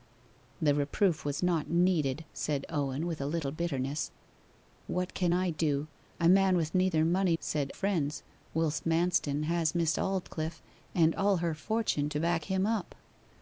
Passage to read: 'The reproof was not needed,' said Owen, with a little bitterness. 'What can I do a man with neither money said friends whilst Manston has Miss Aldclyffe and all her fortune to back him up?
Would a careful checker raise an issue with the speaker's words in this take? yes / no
no